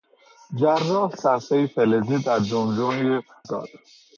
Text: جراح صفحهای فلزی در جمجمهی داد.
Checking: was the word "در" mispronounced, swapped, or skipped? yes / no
no